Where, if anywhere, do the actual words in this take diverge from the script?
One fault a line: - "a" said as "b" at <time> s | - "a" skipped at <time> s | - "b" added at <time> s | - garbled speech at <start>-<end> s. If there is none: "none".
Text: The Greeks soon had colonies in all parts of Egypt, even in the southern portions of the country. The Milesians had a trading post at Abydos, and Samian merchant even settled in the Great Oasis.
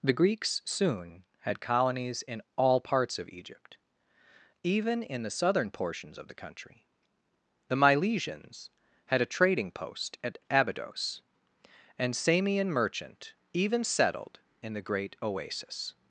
none